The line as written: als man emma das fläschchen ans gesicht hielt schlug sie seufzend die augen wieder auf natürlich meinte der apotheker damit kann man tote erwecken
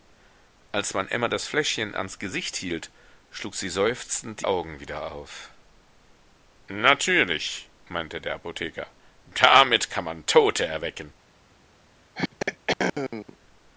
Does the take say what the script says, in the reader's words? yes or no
no